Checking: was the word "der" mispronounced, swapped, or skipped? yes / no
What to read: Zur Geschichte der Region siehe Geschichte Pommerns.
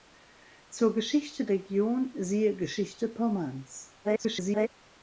yes